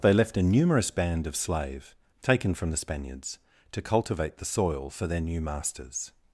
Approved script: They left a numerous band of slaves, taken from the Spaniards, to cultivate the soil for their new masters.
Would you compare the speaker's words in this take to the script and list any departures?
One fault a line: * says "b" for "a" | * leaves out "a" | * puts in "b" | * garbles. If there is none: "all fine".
* says "slave" for "slaves"